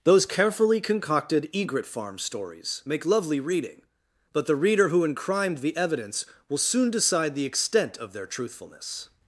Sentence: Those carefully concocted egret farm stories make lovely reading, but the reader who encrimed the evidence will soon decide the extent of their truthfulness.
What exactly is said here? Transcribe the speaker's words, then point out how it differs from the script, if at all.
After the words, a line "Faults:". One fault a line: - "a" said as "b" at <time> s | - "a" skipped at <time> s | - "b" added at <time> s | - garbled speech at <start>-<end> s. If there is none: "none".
Those carefully concocted egret farm stories make lovely reading, but the reader who encrimed the evidence will soon decide the extent of their truthfulness.
Faults:
none